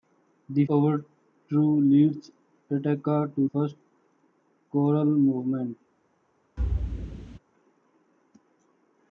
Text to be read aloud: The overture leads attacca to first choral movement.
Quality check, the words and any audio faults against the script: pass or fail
fail